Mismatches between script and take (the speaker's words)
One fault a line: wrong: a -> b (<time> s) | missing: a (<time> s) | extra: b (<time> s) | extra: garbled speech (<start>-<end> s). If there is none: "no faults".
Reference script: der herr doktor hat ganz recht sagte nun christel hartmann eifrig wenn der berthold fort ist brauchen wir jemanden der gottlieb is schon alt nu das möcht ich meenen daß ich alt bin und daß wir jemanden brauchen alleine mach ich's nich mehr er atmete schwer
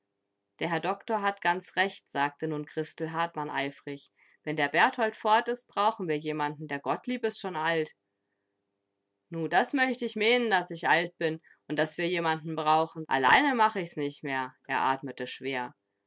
no faults